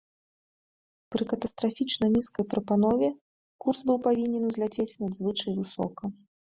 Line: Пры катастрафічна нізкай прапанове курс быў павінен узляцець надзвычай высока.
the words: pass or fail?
pass